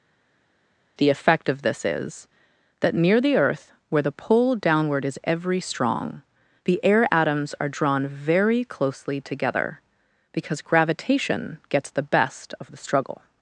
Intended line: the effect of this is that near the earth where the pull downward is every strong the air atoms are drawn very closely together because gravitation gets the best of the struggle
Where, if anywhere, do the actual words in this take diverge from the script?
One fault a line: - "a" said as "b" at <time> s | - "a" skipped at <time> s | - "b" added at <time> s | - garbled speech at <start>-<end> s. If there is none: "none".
none